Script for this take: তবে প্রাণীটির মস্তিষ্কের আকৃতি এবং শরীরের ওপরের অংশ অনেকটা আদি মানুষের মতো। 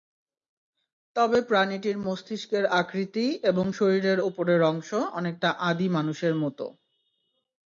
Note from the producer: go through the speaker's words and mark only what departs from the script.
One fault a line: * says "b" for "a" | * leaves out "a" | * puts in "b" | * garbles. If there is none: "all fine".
all fine